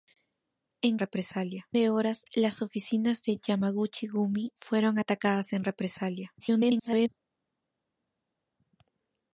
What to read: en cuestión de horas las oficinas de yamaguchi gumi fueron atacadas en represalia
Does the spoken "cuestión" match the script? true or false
false